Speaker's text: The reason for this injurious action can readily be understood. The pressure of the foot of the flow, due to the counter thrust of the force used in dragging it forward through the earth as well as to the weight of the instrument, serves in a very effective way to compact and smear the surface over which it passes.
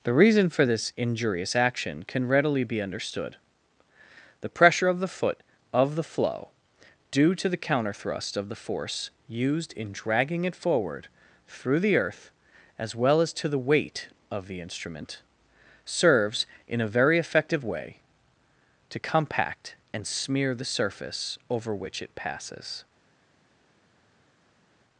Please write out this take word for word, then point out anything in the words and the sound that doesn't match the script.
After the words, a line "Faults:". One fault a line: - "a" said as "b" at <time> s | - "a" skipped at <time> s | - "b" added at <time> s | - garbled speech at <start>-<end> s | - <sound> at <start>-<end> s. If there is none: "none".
The reason for this injurious action can readily be understood. The pressure of the foot of the flow, due to the counter thrust of the force used in dragging it forward through the earth as well as to the weight of the instrument, serves in a very effective way to compact and smear the surface over which it passes.
Faults:
none